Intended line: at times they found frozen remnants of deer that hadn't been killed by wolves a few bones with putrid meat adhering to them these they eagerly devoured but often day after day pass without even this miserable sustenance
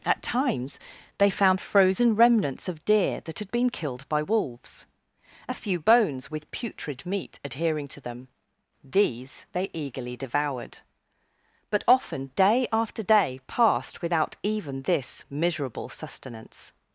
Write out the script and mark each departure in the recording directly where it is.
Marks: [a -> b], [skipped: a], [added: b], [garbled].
at times they found frozen remnants of deer that [hadn't -> had] been killed by wolves a few bones with putrid meat adhering to them these they eagerly devoured but often day after day [pass -> passed] without even this miserable sustenance